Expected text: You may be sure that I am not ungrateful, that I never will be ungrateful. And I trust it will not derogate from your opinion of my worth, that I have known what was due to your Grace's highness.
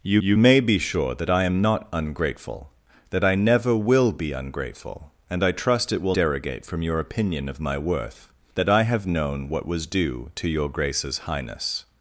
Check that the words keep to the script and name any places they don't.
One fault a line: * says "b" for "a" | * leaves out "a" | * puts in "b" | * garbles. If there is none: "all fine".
* puts in "you"
* leaves out "not"